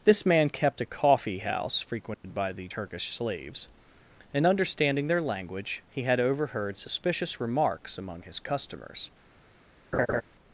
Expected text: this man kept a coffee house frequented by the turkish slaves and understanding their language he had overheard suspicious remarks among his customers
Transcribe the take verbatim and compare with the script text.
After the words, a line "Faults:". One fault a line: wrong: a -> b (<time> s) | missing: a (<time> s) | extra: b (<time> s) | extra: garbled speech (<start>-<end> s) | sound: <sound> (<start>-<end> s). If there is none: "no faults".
this man kept a coffee house frequented by the turkish slaves and understanding their language he had overheard suspicious remarks among his customers
Faults:
sound: dropout (2.1-2.2 s)
sound: laugh (9.9-10.2 s)